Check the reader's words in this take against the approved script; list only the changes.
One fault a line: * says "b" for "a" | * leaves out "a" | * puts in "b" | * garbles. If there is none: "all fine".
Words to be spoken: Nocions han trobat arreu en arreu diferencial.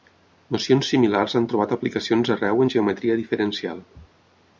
* puts in "similars"
* puts in "aplicacions"
* says "geometria" for "arreu"